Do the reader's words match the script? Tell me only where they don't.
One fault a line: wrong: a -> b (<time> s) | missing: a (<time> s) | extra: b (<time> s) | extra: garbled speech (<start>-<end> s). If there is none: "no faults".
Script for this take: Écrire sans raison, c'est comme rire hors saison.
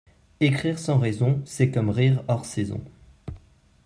no faults